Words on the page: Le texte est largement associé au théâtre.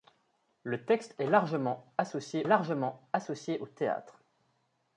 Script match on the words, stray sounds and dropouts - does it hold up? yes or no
no